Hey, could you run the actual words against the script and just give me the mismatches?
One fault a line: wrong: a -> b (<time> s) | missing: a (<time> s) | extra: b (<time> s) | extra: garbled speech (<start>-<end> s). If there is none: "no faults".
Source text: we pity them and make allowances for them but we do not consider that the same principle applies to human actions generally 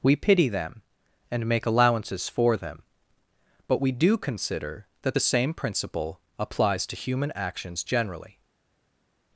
missing: not (4.2 s)